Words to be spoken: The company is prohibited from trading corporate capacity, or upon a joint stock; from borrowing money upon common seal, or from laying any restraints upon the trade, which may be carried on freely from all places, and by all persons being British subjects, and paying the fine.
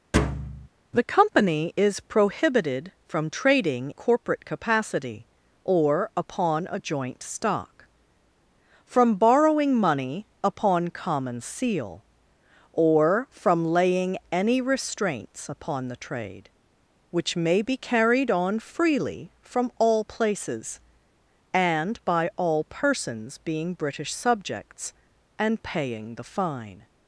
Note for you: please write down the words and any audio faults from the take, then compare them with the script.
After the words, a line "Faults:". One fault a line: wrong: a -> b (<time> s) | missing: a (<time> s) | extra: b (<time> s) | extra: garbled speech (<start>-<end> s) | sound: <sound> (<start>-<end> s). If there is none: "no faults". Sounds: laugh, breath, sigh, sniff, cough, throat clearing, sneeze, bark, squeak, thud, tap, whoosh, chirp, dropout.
The company is prohibited from trading corporate capacity, or upon a joint stock; from borrowing money upon common seal, or from laying any restraints upon the trade, which may be carried on freely from all places, and by all persons being British subjects, and paying the fine.
Faults:
sound: thud (0.1-0.7 s)